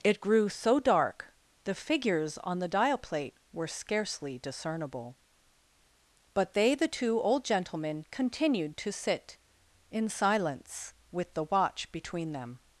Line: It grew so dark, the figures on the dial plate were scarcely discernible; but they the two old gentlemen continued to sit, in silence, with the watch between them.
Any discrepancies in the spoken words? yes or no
no